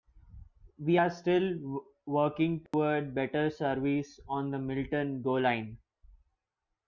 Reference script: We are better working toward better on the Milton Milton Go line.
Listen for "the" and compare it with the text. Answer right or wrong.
right